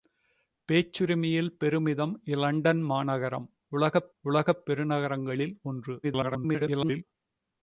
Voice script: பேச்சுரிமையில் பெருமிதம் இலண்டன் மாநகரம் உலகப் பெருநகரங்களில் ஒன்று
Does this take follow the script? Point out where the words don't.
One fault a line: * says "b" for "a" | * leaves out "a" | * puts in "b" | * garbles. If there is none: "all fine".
* puts in "உலகப்"
* garbles